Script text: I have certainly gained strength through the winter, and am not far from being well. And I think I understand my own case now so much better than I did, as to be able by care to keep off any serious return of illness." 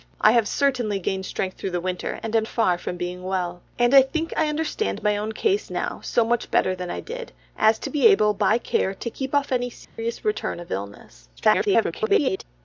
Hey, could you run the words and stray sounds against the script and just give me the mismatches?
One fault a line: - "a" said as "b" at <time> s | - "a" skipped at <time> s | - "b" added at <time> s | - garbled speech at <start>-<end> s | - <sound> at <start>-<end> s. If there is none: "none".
- "not" skipped at 2.5 s
- dropout at 9.8-10.0 s
- garbled speech at 11.4-12.4 s